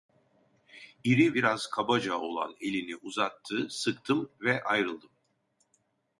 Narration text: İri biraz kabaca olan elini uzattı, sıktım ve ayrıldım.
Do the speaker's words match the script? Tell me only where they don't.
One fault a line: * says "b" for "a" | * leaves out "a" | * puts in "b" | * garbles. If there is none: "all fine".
all fine